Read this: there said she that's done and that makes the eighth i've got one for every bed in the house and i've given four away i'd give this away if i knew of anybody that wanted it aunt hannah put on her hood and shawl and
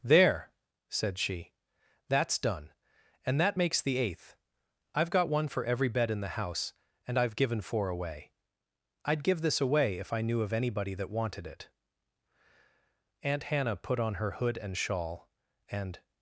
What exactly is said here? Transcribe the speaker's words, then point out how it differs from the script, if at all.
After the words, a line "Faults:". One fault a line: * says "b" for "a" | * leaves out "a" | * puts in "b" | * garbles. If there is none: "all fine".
there said she that's done and that makes the eighth i've got one for every bed in the house and i've given four away i'd give this away if i knew of anybody that wanted it aunt hannah put on her hood and shawl and
Faults:
all fine